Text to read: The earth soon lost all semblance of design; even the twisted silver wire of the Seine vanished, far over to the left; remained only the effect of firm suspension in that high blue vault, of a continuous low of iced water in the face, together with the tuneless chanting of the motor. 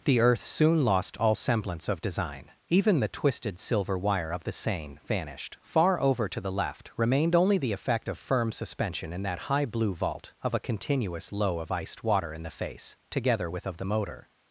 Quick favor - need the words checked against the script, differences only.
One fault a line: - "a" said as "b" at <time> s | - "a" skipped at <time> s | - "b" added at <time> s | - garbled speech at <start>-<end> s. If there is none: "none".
- "the tuneless chanting" skipped at 13.7 s